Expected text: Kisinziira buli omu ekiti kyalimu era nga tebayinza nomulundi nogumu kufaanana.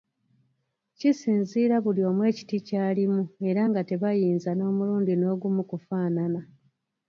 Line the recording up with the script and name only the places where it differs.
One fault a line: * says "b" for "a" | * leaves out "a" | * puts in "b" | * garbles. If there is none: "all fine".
all fine